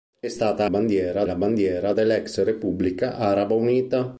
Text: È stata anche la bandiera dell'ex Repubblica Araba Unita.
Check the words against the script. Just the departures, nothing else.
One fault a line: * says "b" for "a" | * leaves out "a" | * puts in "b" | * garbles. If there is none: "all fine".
* says "bandiera" for "anche"